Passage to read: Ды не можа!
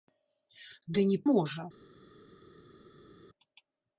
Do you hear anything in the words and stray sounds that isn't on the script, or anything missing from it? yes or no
no